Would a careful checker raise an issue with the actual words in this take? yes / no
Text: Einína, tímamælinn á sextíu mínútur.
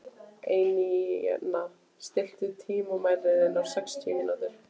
yes